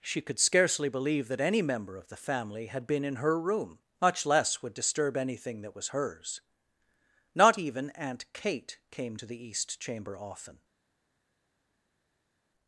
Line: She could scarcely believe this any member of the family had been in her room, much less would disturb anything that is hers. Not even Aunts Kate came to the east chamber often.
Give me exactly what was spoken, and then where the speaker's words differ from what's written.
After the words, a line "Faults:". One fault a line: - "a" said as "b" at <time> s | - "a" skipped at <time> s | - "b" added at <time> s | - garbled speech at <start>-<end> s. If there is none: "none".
She could scarcely believe that any member of the family had been in her room, much less would disturb anything that was hers. Not even Aunt Kate came to the east chamber often.
Faults:
- "this" said as "that" at 1.3 s
- "is" said as "was" at 5.8 s
- "Aunts" said as "Aunt" at 7.9 s